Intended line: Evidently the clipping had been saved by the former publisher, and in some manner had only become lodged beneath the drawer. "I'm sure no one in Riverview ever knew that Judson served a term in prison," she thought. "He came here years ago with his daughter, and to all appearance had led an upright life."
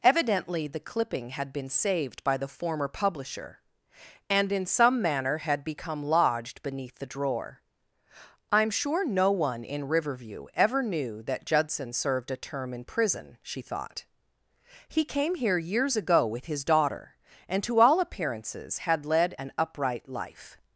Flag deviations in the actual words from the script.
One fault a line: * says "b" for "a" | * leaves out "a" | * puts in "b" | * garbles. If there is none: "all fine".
* leaves out "only"
* says "appearances" for "appearance"